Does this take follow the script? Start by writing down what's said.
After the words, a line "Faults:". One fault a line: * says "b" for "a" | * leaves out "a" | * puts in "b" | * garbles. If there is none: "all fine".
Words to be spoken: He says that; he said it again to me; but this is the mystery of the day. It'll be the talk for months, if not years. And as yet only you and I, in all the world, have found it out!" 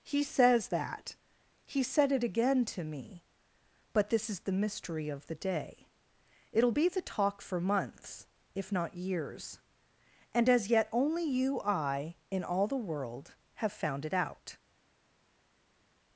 He says that; he said it again to me; but this is the mystery of the day. It'll be the talk for months, if not years. And as yet only you I, in all the world, have found it out!"
Faults:
* leaves out "and"